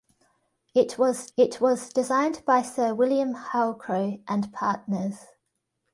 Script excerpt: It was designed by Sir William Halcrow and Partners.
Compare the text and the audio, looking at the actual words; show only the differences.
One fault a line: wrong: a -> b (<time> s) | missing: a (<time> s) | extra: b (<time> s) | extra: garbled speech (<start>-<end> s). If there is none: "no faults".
extra: it was (1.4 s)